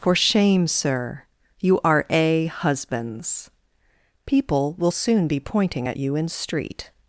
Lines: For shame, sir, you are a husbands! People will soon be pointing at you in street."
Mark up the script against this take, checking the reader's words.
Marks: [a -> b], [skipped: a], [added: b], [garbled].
For shame, sir, you are a husbands! People will soon be pointing at you in street."